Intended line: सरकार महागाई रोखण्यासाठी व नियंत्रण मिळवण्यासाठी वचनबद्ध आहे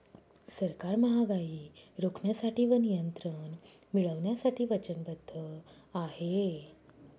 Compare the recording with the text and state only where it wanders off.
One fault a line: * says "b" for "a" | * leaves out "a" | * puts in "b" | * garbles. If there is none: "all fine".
all fine